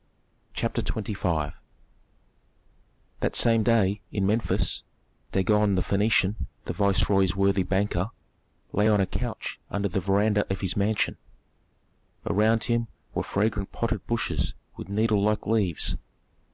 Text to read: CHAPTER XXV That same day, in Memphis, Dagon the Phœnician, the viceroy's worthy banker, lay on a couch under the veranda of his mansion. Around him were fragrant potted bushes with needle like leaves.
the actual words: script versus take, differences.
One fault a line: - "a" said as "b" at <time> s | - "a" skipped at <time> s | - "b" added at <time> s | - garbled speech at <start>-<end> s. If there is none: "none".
none